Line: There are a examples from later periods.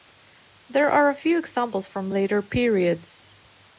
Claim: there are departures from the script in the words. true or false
true